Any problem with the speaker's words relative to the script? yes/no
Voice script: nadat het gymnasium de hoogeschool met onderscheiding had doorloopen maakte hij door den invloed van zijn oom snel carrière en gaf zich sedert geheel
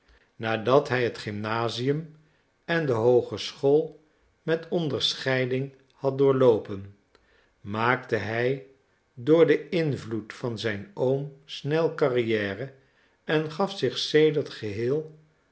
yes